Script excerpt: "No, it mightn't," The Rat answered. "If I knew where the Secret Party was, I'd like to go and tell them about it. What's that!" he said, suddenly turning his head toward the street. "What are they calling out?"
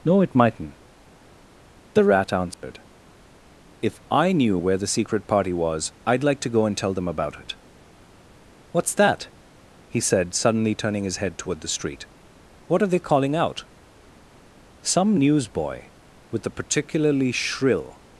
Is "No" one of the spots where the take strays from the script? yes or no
no